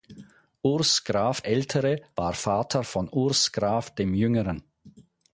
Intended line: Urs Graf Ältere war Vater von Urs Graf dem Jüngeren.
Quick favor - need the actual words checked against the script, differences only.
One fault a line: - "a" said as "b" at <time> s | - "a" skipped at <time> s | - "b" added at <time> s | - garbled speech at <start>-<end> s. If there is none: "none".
none